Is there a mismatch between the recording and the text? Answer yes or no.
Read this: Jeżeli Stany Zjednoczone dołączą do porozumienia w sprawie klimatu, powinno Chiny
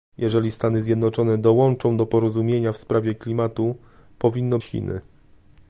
no